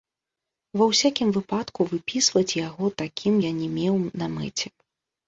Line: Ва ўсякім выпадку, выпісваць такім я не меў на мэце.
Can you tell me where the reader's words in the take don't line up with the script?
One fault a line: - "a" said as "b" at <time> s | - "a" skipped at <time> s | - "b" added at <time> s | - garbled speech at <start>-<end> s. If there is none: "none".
- "яго" added at 2.7 s